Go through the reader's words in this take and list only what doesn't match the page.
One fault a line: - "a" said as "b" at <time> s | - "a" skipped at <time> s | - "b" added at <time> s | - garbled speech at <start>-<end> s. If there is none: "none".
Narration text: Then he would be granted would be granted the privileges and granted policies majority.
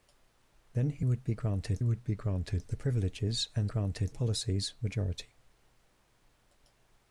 none